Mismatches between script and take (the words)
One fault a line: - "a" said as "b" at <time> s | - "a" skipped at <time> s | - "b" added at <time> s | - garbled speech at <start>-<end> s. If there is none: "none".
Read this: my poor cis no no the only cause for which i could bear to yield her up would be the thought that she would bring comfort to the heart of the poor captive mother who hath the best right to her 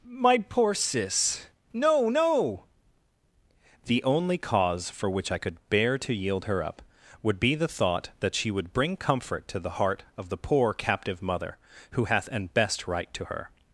- "the" said as "an" at 12.3 s